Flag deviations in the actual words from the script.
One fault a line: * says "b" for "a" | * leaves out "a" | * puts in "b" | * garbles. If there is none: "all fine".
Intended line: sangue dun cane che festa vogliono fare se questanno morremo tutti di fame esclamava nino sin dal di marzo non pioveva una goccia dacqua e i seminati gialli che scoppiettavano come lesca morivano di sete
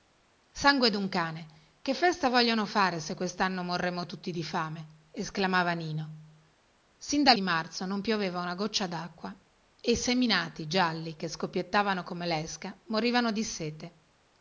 all fine